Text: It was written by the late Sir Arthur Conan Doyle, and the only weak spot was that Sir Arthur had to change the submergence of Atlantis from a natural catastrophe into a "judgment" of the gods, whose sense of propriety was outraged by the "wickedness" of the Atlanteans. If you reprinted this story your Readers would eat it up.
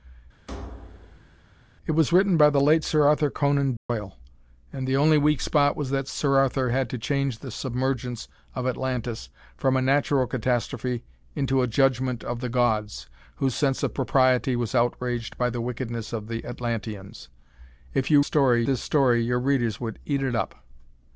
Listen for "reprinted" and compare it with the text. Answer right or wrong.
wrong